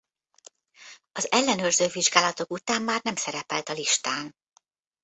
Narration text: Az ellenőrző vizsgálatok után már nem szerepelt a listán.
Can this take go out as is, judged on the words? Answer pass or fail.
pass